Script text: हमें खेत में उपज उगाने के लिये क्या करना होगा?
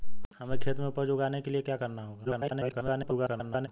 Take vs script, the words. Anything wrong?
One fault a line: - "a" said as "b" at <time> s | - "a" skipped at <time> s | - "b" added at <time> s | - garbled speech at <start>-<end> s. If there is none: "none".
- garbled speech at 2.2-3.7 s